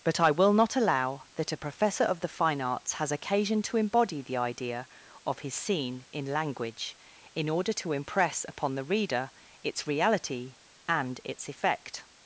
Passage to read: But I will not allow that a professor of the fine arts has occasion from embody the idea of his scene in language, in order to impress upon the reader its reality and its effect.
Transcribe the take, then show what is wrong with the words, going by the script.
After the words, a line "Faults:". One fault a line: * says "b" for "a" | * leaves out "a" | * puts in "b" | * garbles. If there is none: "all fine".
But I will not allow that a professor of the fine arts has occasion to embody the idea of his scene in language, in order to impress upon the reader its reality and its effect.
Faults:
* says "to" for "from"